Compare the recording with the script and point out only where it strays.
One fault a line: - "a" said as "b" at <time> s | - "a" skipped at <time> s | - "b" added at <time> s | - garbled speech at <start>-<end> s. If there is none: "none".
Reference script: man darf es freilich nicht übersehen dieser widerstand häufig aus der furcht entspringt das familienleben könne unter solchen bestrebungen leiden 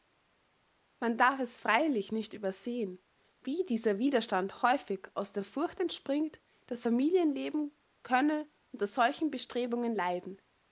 - "wie" added at 3.4 s